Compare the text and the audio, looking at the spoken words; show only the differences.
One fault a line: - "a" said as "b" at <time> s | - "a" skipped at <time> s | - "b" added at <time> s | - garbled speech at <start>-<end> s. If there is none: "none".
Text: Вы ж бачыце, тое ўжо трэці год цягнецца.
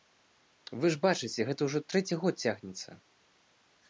- "тое" said as "гэта" at 1.5 s